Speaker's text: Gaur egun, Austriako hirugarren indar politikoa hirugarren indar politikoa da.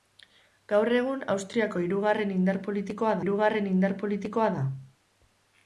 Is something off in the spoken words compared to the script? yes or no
no